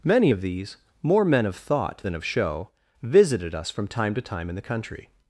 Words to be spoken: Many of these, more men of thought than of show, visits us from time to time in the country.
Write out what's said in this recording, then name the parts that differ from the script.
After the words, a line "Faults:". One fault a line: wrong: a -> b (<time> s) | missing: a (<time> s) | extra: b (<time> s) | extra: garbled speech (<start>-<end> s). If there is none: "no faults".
Many of these, more men of thought than of show, visited us from time to time in the country.
Faults:
wrong: visits -> visited (3.0 s)